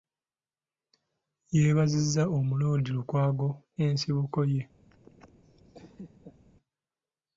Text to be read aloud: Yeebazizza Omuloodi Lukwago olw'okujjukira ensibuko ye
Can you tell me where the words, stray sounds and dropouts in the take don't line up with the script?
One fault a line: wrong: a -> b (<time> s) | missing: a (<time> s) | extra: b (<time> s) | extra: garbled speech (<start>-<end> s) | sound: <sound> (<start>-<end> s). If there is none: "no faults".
missing: olw'okujjukira (3.5 s)
sound: laugh (4.9-6.5 s)